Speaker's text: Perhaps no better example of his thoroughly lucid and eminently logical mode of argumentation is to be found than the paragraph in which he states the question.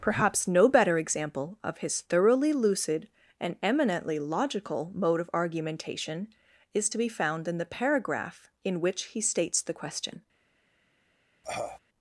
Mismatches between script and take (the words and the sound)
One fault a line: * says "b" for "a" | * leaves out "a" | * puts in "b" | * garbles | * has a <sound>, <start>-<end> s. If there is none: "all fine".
* says "in" for "than"
* has a cough, 11.4-11.8 s